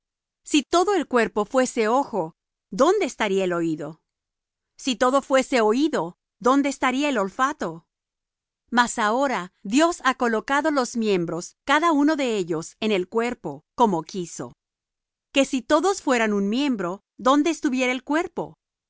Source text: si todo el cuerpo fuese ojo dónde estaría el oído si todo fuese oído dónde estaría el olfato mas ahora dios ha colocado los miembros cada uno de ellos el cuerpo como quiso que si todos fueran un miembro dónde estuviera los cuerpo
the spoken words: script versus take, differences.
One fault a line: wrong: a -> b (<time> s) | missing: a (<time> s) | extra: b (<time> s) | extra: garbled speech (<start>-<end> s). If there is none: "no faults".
extra: en (12.8 s)
wrong: los -> el (17.9 s)